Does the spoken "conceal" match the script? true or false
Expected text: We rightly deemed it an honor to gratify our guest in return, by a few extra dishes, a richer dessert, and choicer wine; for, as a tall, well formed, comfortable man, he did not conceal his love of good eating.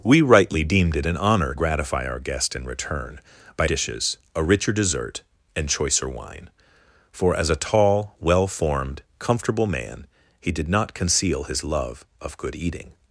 true